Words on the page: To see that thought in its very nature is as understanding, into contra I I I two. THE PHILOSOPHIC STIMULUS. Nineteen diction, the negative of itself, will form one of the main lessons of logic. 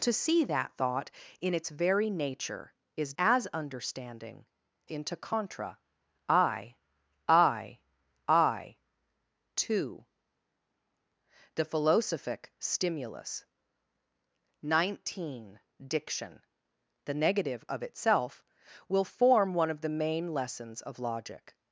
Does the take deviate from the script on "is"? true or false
false